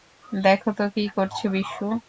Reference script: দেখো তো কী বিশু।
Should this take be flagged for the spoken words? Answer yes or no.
yes